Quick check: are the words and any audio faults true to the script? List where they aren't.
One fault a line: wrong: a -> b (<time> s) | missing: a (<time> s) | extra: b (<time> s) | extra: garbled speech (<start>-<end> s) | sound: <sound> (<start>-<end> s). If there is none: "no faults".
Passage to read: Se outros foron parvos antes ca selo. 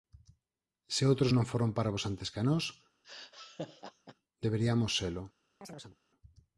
extra: non (1.3 s)
extra: nós deberiamos (2.5 s)
sound: laugh (3.0-4.2 s)
sound: chirp (5.6-6.0 s)